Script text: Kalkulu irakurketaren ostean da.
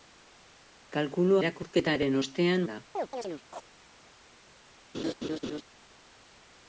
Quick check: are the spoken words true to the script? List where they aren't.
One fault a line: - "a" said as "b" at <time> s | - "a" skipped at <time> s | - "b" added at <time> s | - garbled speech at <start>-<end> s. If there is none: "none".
none